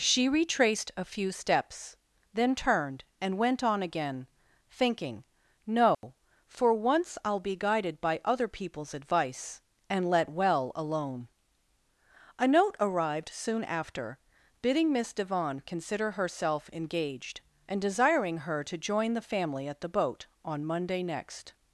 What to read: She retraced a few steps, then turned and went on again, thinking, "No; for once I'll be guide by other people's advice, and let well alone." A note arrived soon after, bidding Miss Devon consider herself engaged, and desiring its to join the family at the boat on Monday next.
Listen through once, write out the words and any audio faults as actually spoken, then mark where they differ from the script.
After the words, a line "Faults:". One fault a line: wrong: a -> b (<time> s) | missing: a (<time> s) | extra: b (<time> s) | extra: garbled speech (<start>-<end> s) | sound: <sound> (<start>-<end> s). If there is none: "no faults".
She retraced a few steps, then turned and went on again, thinking, "No; for once I'll be guided by other people's advice, and let well alone." A note arrived soon after, bidding Miss Devon consider herself engaged, and desiring her to join the family at the boat on Monday next.
Faults:
sound: dropout (5.9-6.0 s)
wrong: guide -> guided (7.6 s)
wrong: its -> her (18.4 s)